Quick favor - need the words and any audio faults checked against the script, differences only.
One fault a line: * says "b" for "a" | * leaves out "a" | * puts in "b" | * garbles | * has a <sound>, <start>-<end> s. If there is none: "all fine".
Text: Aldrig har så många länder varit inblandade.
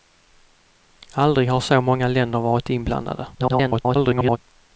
* garbles